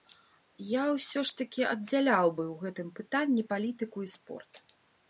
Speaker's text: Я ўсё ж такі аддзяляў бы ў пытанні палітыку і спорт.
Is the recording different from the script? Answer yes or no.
yes